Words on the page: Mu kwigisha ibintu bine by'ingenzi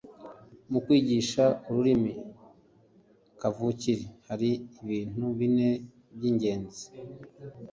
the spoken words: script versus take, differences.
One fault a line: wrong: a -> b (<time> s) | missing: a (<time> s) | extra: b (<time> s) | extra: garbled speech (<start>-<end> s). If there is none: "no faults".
extra: ururimi kavukire hari (1.7 s)